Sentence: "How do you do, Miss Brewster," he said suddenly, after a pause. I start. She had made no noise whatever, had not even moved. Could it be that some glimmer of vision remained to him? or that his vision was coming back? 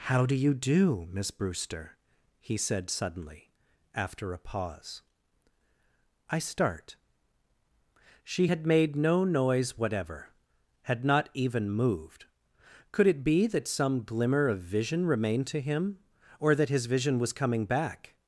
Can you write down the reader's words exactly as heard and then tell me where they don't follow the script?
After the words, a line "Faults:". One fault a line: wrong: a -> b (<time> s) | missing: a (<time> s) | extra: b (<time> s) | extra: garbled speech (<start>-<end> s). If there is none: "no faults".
"How do you do, Miss Brewster," he said suddenly, after a pause. I start. She had made no noise whatever, had not even moved. Could it be that some glimmer of vision remained to him? or that his vision was coming back?
Faults:
no faults